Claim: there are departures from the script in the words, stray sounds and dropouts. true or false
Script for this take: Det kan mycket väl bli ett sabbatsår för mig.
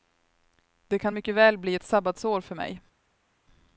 false